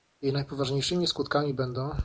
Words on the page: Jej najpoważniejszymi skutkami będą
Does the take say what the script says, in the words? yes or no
yes